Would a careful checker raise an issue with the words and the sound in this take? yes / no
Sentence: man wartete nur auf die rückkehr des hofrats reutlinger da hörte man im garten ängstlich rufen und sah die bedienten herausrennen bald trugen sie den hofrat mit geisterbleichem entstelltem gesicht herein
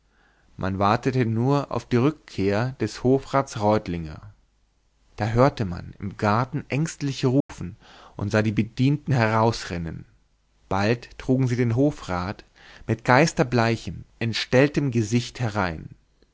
yes